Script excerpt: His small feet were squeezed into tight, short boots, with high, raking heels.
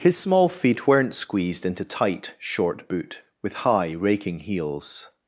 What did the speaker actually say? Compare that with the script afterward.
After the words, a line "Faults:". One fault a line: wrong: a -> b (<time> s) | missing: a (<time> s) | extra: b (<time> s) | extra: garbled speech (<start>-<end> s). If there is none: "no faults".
His small feet weren't squeezed into tight, short boot, with high, raking heels.
Faults:
wrong: were -> weren't (0.9 s)
wrong: boots -> boot (2.9 s)